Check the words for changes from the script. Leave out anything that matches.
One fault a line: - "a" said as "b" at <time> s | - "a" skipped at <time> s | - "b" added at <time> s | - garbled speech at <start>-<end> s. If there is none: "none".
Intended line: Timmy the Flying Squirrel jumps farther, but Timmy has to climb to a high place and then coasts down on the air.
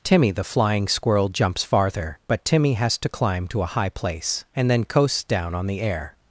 none